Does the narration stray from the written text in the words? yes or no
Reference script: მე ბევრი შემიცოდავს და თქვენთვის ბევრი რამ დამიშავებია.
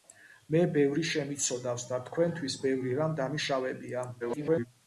yes